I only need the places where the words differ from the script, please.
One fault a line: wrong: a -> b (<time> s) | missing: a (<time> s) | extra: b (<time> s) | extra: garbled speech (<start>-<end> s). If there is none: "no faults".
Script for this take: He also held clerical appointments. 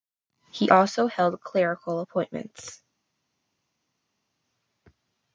no faults